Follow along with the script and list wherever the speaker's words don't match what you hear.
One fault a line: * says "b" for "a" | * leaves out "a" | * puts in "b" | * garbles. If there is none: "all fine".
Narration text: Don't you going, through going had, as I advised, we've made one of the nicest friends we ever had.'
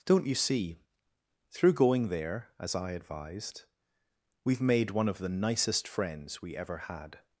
* says "see" for "going"
* says "there" for "had"